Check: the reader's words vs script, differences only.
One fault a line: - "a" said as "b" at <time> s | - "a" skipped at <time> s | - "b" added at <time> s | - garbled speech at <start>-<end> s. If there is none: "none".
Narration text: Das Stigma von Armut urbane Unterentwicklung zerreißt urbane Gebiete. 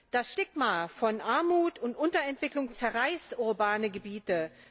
- "urbane" said as "und" at 1.8 s